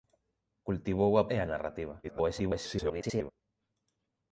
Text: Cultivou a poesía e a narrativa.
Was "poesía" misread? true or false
true